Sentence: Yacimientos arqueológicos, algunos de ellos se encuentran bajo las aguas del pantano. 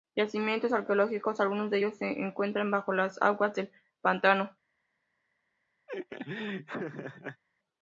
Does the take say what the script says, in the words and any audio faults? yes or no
no